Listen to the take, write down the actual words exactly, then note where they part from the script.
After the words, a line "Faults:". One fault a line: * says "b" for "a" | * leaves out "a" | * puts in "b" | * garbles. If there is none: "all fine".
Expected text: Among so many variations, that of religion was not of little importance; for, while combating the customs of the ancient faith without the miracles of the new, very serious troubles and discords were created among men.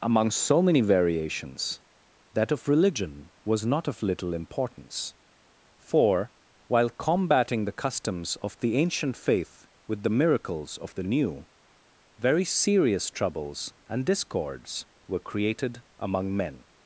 Among so many variations, that of religion was not of little importance; for, while combating the customs of the ancient faith with the miracles of the new, very serious troubles and discords were created among men.
Faults:
* says "with" for "without"